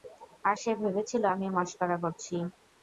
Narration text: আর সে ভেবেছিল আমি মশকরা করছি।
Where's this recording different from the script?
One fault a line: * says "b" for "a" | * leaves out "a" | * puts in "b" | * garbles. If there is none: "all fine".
all fine